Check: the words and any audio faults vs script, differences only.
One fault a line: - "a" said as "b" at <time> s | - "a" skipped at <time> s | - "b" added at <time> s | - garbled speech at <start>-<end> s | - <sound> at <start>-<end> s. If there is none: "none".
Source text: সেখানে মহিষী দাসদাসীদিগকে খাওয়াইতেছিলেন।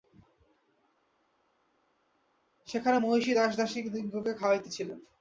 none